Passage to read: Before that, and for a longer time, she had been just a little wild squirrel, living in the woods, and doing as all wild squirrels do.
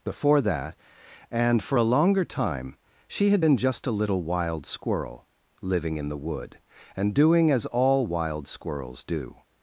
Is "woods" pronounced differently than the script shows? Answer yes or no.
yes